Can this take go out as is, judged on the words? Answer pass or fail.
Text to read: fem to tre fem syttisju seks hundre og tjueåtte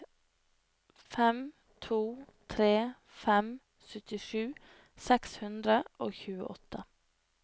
pass